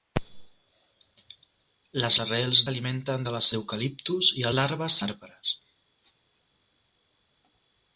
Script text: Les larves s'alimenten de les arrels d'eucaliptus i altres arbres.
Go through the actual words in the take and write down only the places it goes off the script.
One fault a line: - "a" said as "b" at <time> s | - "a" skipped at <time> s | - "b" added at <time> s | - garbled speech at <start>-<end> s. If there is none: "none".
- "larves" said as "arrels" at 2.3 s
- "arrels" skipped at 3.5 s
- "altres" said as "larves" at 4.6 s